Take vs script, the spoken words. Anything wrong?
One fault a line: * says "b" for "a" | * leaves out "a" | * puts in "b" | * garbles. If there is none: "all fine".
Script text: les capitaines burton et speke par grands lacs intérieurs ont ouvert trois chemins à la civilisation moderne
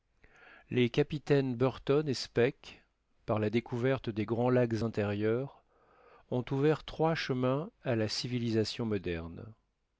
* puts in "la découverte des"